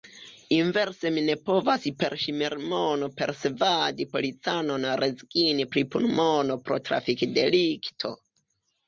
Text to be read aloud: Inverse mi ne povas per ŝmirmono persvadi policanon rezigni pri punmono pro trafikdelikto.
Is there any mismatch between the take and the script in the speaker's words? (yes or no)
no